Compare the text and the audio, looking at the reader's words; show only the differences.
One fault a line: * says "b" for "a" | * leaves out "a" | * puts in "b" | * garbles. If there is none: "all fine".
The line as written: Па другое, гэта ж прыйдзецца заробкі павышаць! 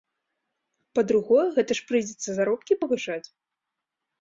all fine